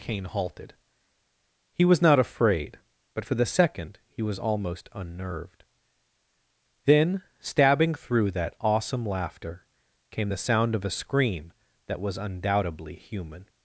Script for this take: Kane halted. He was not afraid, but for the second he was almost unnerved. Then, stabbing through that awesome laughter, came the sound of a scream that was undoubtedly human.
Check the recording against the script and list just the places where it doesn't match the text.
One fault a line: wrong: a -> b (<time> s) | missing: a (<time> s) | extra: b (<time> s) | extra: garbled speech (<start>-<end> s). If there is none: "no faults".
no faults